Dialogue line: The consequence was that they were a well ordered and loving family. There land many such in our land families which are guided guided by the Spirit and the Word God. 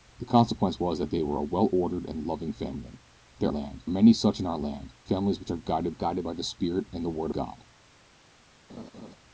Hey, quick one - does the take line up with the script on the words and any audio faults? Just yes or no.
no